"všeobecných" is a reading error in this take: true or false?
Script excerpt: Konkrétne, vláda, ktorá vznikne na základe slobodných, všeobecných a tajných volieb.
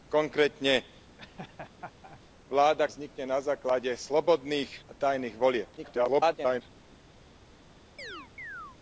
true